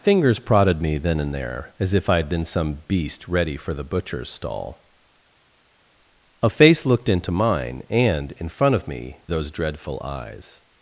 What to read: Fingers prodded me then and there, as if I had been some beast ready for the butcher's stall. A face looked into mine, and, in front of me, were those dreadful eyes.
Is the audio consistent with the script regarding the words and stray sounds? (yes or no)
no